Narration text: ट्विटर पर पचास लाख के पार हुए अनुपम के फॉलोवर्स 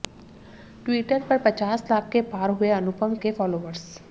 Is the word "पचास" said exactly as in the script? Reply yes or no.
yes